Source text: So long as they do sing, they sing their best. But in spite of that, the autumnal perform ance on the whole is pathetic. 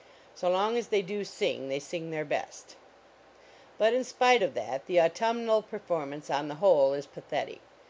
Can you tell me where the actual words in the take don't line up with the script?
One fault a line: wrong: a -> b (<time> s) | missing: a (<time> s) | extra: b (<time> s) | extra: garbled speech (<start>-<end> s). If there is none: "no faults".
no faults